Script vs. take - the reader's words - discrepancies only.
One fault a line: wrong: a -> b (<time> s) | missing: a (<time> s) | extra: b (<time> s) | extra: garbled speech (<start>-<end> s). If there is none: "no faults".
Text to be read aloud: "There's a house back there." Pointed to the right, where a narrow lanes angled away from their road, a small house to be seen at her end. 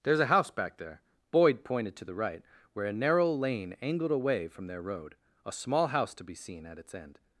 extra: Boyd (1.3 s)
wrong: lanes -> lane (3.3 s)
wrong: her -> its (6.8 s)